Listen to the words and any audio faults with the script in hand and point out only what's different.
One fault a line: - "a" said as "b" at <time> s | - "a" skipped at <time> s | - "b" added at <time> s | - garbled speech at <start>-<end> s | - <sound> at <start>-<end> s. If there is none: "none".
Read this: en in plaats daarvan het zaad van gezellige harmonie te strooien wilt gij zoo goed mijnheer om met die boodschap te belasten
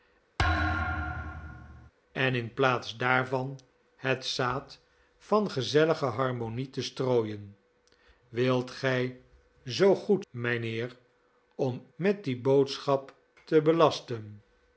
- thud at 0.4-1.9 s